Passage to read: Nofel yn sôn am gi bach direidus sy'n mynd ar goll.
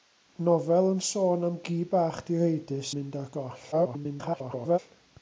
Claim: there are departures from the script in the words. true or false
true